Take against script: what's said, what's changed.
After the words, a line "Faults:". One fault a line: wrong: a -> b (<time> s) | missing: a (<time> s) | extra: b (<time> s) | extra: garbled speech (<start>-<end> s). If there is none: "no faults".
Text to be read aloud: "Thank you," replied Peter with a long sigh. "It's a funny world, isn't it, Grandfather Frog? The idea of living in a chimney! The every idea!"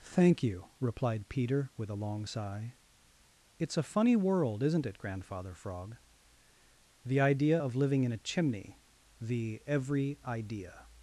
"Thank you," replied Peter with a long sigh. "It's a funny world, isn't it, Grandfather Frog? The idea of living in a chimney! The every idea!"
Faults:
no faults